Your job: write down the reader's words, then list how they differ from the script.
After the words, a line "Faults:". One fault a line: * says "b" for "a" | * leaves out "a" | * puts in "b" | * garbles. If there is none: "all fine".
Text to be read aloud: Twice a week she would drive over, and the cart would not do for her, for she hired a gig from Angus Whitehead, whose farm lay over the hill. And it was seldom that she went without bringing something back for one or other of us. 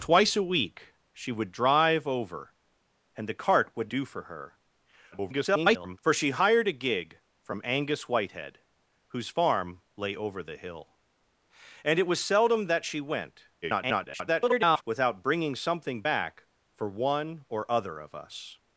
Twice a week she would drive over, and the cart would do for her, [garbled] for she hired a gig from Angus Whitehead, whose farm lay over the hill. And it was seldom that she went [garbled] without bringing something back for one or other of us.
Faults:
* leaves out "not"
* garbles
* garbles